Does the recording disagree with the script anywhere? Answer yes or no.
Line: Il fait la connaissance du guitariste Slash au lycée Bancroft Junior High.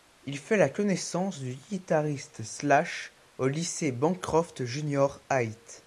no